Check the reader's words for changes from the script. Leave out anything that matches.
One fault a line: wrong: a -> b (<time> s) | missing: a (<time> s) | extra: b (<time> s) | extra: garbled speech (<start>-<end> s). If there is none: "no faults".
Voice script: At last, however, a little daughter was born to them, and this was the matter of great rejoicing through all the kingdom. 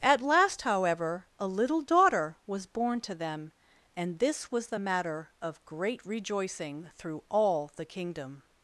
no faults